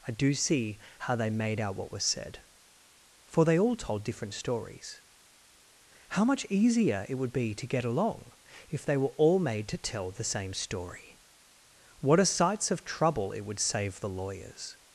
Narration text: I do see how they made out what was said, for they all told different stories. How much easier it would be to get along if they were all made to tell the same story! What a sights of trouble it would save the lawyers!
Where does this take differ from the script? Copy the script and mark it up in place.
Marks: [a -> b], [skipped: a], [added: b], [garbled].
I do see how they made out what was said, for they all told different stories. How much easier it would be to get along if they were all made to tell the same story! What a sights of trouble it would save the lawyers!